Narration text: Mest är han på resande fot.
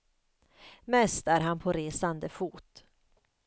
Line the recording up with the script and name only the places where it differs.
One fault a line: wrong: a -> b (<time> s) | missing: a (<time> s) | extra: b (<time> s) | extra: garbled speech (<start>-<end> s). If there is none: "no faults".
no faults